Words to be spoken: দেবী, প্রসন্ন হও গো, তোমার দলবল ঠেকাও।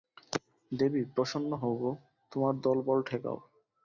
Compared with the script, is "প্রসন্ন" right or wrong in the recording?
right